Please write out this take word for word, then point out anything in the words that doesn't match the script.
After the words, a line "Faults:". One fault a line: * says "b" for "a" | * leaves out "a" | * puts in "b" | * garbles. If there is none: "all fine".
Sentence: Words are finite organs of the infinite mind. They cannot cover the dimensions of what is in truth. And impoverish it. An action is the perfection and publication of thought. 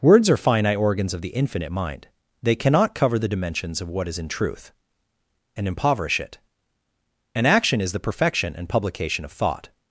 Words are finite organs of the infinite mind. They cannot cover the dimensions of what is in truth. And impoverish it. An action is the perfection and publication of thought.
Faults:
all fine